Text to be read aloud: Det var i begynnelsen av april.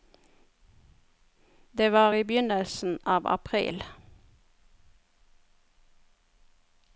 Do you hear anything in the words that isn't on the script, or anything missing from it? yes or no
no